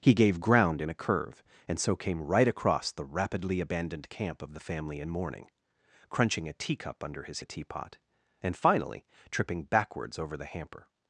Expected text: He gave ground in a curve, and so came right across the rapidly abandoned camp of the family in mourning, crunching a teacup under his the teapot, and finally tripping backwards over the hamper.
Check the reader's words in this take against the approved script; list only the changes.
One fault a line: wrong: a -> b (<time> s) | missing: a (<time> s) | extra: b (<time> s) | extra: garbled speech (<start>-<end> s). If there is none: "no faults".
no faults